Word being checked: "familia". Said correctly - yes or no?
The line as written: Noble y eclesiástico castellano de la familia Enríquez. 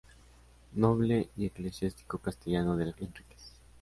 no